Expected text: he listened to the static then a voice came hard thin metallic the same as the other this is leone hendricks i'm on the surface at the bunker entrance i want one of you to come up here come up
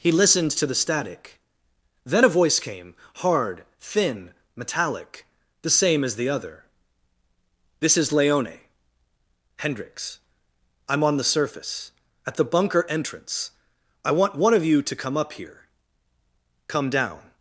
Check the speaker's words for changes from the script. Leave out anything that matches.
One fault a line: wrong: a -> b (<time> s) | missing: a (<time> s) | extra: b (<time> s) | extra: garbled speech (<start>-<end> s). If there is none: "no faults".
wrong: up -> down (16.9 s)